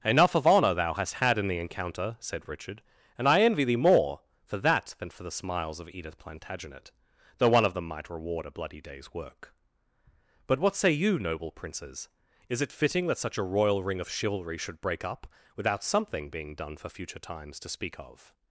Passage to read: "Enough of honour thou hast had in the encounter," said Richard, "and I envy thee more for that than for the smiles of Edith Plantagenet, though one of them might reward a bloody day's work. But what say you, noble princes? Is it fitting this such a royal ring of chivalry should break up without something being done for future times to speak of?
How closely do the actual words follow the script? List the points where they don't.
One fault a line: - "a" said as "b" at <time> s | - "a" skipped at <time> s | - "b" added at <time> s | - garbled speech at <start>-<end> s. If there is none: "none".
- "this" said as "that" at 13.1 s